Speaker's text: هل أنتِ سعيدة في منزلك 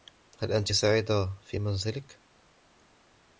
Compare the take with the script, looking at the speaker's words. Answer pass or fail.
pass